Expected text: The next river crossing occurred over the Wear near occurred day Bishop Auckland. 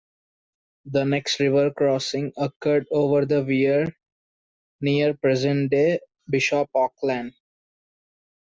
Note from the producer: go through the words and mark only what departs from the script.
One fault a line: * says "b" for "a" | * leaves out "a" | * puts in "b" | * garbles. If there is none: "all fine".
* says "present" for "occurred"